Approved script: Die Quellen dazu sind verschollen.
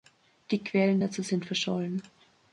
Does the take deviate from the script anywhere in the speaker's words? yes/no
no